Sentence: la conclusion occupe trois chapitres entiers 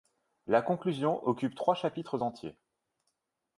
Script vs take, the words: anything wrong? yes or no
no